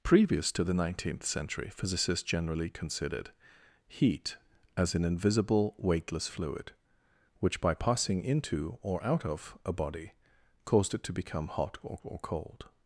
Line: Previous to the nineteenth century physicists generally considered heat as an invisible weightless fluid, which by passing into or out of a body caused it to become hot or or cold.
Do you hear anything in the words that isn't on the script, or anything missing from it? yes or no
no